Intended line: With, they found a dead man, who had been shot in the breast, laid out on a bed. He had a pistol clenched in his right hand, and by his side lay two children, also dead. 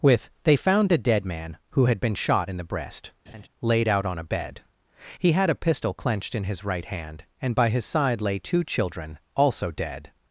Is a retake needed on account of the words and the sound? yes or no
yes